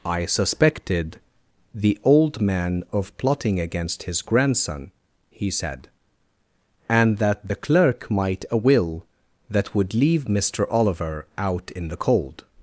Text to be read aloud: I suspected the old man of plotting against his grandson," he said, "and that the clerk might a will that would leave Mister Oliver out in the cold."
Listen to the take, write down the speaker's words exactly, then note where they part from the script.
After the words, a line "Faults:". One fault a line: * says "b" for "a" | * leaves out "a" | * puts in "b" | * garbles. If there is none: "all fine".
I suspected the old man of plotting against his grandson," he said, "and that the clerk might a will that would leave Mister Oliver out in the cold."
Faults:
all fine